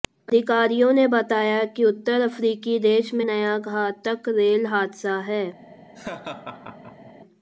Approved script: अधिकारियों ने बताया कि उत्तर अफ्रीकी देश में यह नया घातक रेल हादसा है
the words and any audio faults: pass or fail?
fail